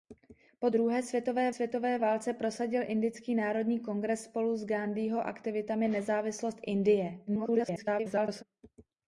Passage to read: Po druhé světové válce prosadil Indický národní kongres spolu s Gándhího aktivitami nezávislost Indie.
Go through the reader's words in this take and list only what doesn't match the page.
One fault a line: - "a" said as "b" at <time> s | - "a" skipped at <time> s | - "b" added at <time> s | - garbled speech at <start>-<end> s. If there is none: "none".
- "světové" added at 1.5 s
- garbled speech at 7.3-8.4 s